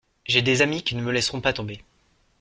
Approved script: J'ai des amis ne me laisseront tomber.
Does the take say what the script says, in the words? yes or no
no